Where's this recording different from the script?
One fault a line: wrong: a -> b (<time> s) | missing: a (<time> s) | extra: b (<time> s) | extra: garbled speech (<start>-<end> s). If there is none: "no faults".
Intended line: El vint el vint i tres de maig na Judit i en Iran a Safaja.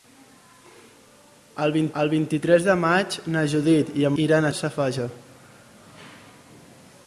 no faults